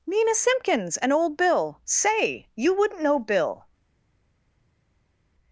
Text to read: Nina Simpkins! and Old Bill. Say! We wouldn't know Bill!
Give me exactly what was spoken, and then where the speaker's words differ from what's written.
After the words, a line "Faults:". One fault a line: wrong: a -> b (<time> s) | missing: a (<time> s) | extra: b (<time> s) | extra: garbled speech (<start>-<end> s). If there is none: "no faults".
Nina Simpkins! and Old Bill. Say! You wouldn't know Bill!
Faults:
wrong: We -> You (2.5 s)